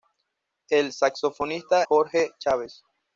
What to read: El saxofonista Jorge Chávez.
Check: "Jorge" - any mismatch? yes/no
no